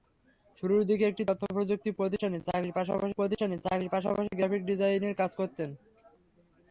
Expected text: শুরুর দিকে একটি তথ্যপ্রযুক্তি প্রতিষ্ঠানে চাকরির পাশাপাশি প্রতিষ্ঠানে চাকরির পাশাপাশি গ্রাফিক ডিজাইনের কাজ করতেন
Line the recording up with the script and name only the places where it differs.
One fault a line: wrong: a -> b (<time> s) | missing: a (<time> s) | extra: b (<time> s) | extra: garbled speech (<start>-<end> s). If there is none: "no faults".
no faults